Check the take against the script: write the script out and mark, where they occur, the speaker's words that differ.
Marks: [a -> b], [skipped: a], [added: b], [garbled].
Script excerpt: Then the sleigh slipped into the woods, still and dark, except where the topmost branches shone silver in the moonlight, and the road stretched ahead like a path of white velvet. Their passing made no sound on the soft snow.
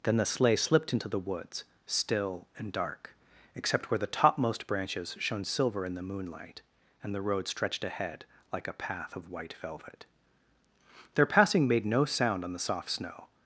Then the sleigh slipped into the woods, still and dark, except where the topmost branches shone silver in the moonlight, and the road stretched ahead like a path of white velvet. Their passing made no sound on the soft snow.